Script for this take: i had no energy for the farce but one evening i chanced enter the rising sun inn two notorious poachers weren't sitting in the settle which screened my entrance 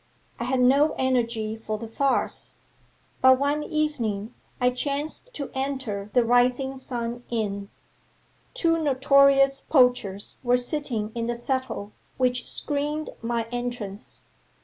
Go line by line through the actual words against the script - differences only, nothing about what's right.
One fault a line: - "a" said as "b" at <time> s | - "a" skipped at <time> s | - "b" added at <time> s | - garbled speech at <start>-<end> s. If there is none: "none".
- "to" added at 5.3 s
- "weren't" said as "were" at 10.4 s